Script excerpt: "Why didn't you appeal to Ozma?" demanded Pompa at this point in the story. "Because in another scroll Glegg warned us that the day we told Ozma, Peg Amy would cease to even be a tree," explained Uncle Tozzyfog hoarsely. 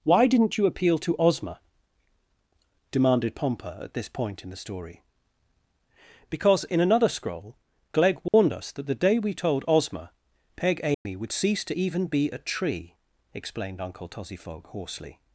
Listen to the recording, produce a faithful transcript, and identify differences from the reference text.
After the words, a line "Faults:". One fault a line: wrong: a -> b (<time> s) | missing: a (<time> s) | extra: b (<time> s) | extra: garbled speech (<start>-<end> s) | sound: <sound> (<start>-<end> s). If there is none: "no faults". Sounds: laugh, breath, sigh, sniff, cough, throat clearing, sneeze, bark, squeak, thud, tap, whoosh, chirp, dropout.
"Why didn't you appeal to Ozma?" demanded Pompa at this point in the story. "Because in another scroll Glegg warned us that the day we told Ozma, Peg Amy would cease to even be a tree," explained Uncle Tozzyfog hoarsely.
Faults:
sound: dropout (8.3-8.3 s)
sound: dropout (10.9-11.1 s)